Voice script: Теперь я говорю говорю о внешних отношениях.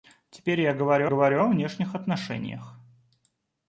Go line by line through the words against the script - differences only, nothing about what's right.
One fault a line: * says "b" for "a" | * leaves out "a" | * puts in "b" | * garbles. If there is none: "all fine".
all fine